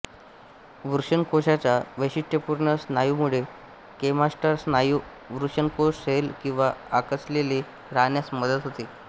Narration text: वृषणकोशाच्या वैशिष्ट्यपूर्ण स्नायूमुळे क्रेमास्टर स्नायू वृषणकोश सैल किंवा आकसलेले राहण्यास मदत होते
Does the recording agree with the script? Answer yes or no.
yes